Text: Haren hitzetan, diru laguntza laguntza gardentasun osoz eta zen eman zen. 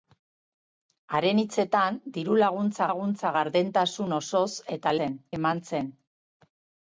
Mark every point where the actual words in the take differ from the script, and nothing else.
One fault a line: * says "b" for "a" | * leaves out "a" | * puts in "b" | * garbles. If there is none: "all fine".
all fine